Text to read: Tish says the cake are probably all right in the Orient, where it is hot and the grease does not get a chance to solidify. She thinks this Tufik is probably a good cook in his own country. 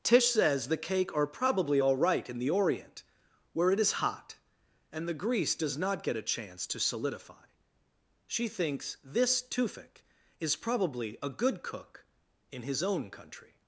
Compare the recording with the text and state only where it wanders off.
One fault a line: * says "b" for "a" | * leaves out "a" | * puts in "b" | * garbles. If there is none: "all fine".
all fine